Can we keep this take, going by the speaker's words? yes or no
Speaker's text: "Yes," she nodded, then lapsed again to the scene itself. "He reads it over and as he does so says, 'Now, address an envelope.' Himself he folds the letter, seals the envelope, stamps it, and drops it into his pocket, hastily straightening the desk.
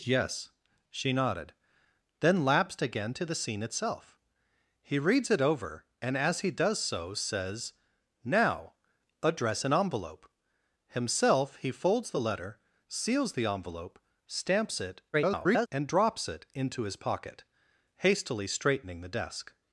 no